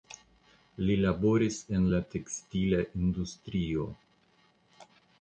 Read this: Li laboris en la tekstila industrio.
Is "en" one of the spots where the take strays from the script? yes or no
no